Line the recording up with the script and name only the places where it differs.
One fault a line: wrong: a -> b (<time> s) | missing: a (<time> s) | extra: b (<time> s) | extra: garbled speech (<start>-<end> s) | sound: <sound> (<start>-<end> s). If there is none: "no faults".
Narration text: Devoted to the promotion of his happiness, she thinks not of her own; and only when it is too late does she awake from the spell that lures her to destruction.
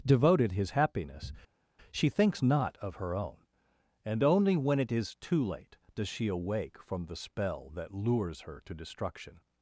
missing: to the promotion of (0.5 s)